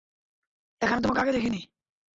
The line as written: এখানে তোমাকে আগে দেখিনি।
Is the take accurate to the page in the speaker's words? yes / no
yes